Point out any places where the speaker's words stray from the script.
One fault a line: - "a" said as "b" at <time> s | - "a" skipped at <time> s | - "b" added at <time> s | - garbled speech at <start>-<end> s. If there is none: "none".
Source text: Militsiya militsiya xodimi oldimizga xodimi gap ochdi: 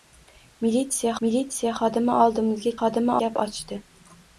none